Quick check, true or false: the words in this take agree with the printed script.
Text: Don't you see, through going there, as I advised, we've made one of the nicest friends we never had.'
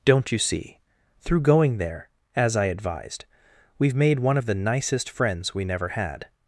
true